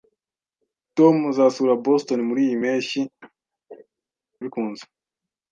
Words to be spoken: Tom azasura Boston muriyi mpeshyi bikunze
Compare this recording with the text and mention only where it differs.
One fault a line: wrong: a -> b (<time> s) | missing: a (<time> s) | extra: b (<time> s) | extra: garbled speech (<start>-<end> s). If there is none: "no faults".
no faults